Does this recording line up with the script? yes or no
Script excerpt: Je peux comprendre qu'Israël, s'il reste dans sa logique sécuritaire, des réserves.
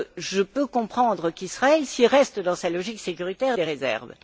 yes